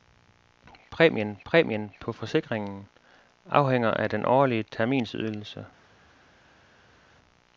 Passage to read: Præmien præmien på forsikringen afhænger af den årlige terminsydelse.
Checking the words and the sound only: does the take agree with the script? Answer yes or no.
yes